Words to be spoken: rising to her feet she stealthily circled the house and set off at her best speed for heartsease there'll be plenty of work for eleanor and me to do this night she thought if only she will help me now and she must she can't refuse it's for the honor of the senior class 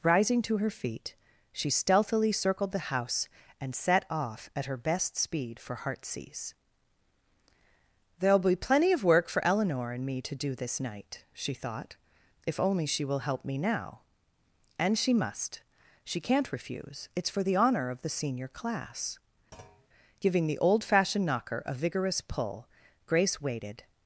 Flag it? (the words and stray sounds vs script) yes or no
yes